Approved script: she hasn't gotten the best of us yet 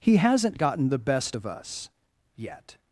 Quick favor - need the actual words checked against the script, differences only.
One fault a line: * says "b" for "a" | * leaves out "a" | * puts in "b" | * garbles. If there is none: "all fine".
* says "he" for "she"